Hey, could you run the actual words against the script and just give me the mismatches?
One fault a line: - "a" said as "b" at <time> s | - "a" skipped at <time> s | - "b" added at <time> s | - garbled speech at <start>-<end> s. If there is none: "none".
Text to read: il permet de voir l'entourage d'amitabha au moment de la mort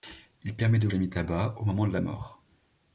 - "voir l'entourage" skipped at 0.9 s